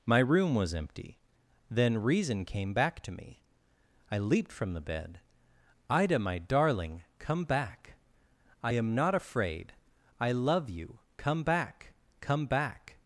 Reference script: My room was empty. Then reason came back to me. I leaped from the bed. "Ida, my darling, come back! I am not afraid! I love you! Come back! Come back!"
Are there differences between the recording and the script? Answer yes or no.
no